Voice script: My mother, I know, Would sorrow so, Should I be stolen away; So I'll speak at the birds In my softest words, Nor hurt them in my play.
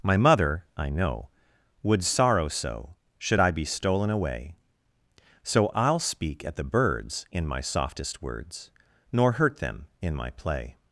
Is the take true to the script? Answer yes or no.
yes